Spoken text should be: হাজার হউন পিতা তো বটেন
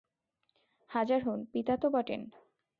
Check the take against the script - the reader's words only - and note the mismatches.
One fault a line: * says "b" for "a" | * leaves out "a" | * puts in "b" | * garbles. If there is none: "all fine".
all fine